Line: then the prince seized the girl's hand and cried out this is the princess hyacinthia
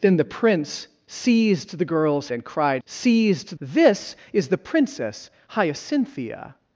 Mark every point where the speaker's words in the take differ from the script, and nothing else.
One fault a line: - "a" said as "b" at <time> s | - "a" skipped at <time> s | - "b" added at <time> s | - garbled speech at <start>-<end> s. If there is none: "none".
- "hand" skipped at 2.3 s
- "out" said as "seized" at 2.9 s